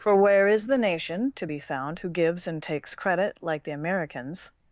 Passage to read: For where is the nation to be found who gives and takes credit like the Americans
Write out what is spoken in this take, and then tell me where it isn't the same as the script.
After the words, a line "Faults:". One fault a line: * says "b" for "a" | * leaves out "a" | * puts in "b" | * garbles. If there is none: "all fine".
For where is the nation to be found who gives and takes credit like the Americans
Faults:
all fine